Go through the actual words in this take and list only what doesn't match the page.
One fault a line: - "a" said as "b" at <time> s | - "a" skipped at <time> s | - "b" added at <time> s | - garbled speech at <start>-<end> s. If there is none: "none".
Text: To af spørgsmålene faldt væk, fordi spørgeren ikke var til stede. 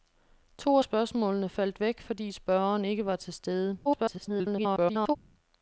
- garbled speech at 3.9-5.2 s